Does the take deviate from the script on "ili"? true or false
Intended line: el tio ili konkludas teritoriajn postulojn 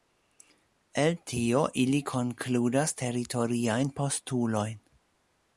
false